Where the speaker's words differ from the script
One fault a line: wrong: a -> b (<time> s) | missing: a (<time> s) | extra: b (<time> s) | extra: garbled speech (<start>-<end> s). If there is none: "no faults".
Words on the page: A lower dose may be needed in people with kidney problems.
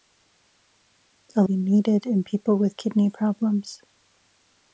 missing: lower dose may (1.4 s)